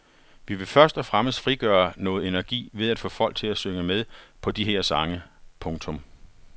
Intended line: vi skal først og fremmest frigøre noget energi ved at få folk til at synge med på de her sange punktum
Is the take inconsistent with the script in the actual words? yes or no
yes